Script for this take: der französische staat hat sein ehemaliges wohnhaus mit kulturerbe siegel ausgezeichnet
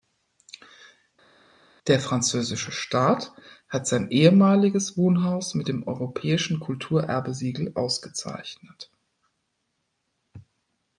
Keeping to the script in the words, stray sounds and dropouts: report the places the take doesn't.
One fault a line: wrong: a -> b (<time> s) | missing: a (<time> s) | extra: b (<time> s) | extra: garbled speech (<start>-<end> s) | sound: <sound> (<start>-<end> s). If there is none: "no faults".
extra: dem europäischen (5.7 s)